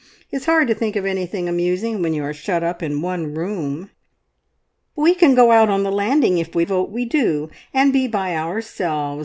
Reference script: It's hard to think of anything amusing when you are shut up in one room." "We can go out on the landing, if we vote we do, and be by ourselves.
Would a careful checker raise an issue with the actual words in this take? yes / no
no